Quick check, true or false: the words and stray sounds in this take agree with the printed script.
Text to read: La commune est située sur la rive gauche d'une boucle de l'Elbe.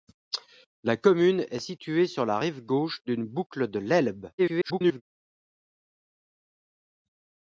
false